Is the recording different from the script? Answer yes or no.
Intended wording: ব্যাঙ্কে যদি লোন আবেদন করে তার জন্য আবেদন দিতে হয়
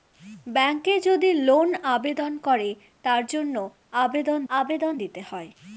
yes